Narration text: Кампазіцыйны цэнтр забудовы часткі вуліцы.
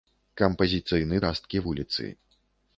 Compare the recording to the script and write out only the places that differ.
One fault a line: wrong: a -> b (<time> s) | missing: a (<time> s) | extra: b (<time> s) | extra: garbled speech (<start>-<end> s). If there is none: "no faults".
missing: цэнтр забудовы (1.2 s)